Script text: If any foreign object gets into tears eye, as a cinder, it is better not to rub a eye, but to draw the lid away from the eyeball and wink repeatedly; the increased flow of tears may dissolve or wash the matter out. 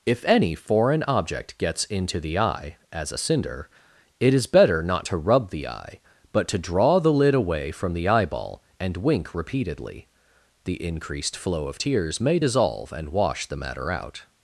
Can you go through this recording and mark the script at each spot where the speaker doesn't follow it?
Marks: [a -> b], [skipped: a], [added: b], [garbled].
If any foreign object gets into [tears -> the] eye, as a cinder, it is better not to rub [a -> the] eye, but to draw the lid away from the eyeball and wink repeatedly; the increased flow of tears may dissolve [or -> and] wash the matter out.